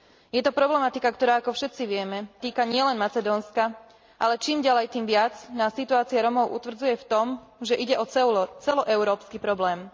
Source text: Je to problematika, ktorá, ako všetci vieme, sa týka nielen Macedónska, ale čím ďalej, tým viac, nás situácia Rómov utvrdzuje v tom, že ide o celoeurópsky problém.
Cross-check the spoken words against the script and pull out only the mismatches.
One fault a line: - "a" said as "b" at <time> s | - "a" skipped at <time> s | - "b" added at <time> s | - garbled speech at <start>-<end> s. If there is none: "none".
- "sa" skipped at 2.2 s